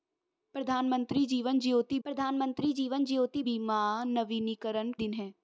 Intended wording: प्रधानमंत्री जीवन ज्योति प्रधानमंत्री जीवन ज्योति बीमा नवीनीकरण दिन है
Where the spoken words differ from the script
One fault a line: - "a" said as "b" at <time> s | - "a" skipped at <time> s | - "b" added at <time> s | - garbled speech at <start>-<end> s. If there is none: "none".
none